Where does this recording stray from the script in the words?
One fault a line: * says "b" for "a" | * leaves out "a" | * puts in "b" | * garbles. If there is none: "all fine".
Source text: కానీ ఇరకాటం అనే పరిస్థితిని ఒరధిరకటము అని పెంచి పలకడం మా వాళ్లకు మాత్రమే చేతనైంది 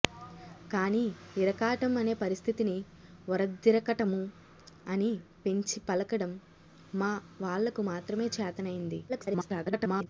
* garbles